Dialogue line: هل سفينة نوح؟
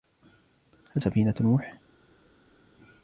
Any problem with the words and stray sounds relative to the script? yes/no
no